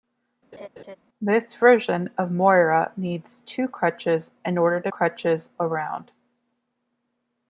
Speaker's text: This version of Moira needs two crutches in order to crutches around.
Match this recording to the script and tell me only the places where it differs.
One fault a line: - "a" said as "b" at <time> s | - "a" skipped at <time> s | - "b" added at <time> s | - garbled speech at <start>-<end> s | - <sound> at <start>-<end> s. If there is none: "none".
- laugh at 0.5-1.0 s